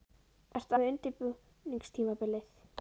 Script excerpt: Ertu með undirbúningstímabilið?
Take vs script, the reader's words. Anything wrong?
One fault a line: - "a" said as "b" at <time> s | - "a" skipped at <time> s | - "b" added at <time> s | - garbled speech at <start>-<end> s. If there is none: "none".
none